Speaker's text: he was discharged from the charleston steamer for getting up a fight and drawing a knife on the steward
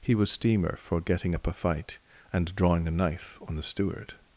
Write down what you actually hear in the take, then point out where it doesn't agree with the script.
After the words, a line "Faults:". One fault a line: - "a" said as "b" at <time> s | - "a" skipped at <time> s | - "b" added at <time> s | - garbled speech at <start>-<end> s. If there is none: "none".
he was steamer for getting up a fight and drawing a knife on the steward
Faults:
- "discharged from the charleston" skipped at 0.3 s